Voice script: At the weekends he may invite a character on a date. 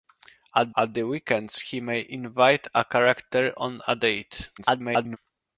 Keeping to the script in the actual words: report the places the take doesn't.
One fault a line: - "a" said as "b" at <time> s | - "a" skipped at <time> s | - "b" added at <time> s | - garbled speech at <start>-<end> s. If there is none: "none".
- "at" added at 0.8 s
- garbled speech at 4.6-5.2 s